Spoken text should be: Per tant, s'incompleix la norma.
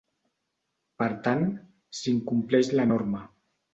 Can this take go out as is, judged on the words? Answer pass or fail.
pass